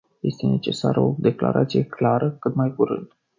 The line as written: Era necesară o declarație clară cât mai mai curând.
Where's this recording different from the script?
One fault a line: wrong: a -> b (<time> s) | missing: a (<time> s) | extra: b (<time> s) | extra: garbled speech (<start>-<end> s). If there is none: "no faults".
wrong: Era -> Este (0.2 s)
missing: mai (2.7 s)